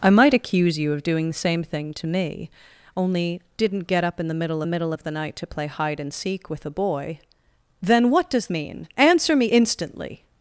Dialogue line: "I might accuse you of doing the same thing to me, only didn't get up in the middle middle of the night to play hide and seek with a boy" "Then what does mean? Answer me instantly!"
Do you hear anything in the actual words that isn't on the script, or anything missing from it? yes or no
no